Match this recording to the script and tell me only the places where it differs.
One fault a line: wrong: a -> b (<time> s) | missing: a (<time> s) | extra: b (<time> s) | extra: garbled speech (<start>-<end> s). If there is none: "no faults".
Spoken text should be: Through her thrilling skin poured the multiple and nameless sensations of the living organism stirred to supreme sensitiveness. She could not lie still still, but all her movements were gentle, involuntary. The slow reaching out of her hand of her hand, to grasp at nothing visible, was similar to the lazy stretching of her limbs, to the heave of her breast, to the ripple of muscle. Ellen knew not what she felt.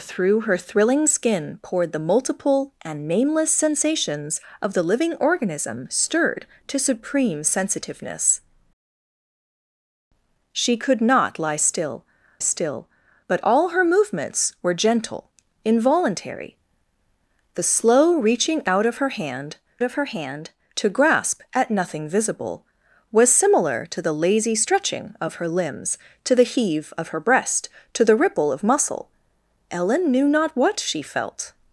no faults